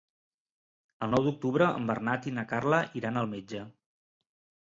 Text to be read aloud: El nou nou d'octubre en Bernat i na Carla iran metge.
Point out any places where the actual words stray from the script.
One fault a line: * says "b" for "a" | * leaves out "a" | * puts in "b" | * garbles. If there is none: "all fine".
* leaves out "nou"
* puts in "al"